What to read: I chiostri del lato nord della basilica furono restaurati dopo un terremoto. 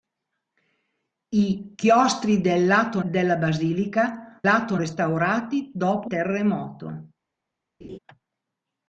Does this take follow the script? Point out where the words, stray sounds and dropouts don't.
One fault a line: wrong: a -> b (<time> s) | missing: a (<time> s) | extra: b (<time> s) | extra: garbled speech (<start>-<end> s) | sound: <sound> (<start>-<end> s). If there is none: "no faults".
missing: nord (3.0 s)
wrong: furono -> lato (4.4 s)
missing: un (6.1 s)
sound: laugh (7.8-8.0 s)